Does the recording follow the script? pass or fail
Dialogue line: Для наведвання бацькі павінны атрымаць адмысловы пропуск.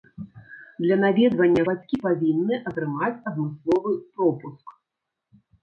pass